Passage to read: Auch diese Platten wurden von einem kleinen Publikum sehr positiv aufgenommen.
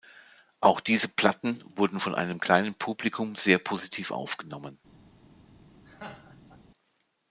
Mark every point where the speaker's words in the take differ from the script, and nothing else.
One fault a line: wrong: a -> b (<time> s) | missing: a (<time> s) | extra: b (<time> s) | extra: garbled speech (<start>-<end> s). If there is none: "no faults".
no faults